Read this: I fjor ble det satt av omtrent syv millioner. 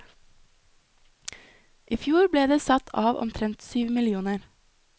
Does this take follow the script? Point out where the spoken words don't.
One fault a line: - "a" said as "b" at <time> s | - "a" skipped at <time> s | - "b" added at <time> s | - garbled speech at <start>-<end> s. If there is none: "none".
none